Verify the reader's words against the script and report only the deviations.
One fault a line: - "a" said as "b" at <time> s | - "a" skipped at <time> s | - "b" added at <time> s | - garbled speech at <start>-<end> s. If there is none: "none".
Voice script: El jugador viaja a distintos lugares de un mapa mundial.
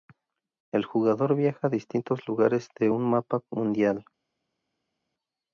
none